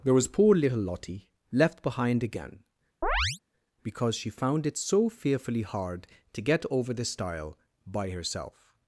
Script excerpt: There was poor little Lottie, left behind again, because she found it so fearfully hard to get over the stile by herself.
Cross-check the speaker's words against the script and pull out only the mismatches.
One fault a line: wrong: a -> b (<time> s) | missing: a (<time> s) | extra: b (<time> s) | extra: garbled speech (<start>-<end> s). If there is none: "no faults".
no faults